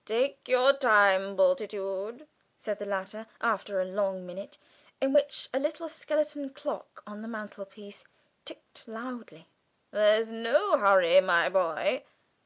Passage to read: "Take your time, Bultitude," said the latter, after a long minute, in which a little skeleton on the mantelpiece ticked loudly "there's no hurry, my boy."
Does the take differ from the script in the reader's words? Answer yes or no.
yes